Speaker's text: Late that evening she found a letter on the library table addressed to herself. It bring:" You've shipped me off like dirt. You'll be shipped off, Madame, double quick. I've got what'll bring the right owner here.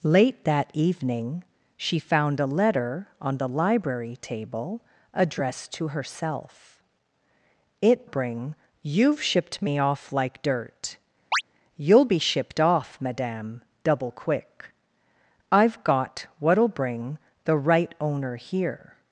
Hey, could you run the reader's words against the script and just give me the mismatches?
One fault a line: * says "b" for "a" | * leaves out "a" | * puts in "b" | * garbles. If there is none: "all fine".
all fine